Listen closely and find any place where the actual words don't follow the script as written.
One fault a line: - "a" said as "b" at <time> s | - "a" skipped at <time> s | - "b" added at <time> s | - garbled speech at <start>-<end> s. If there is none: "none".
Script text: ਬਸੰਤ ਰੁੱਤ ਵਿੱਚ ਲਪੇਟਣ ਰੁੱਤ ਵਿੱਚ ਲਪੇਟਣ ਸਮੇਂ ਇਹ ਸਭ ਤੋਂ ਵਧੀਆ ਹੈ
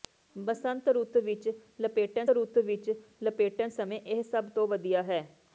none